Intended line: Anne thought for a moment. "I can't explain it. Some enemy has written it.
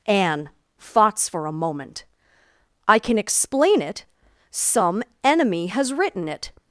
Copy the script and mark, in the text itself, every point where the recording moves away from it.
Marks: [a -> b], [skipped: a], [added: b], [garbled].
Anne [thought -> thoughts] for a moment. "I [can't -> can] explain it. Some enemy has written it.